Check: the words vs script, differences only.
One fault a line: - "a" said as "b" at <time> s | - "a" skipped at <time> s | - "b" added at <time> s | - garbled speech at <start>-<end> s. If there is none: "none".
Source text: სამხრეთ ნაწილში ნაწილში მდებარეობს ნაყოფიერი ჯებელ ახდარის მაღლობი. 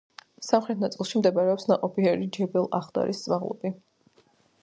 - "ნაწილში" skipped at 1.2 s